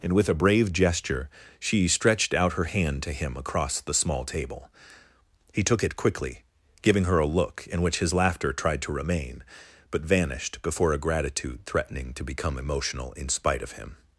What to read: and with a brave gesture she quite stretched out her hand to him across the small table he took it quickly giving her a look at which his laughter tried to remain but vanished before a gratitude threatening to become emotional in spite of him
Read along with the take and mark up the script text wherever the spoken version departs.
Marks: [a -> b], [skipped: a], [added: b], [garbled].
and with a brave gesture she [skipped: quite] stretched out her hand to him across the small table he took it quickly giving her a look [at -> in] which his laughter tried to remain but vanished before a gratitude threatening to become emotional in spite of him